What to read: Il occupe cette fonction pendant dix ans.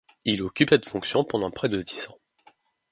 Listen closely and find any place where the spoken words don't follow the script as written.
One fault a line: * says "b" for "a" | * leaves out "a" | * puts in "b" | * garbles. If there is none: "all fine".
* puts in "près de"